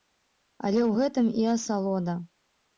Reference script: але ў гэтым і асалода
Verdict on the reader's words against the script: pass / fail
pass